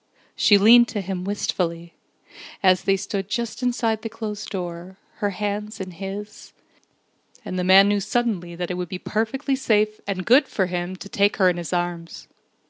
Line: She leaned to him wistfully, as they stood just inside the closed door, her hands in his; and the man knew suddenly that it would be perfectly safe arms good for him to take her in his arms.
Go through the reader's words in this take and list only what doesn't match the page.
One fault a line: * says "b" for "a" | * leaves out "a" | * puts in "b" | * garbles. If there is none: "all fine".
* says "and" for "arms"